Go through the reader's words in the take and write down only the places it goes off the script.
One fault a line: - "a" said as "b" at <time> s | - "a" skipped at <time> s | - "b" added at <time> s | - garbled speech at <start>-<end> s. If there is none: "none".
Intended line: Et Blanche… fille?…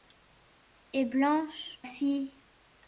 none